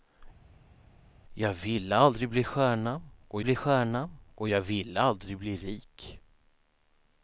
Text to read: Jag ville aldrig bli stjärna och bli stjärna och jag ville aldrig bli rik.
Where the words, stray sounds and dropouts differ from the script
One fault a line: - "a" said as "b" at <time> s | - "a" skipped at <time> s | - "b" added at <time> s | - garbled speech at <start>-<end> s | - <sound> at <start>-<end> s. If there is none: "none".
none